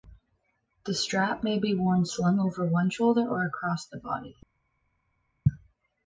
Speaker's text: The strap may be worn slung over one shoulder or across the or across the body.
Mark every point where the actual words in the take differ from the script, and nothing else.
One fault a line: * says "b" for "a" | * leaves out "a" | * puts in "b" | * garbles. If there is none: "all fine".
* leaves out "or across the"